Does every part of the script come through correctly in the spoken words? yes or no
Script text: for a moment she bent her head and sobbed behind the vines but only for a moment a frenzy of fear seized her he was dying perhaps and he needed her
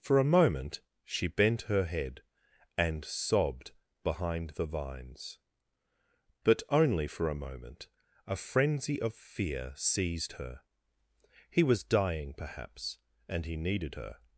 yes